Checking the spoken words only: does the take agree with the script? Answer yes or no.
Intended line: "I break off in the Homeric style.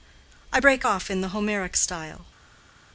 yes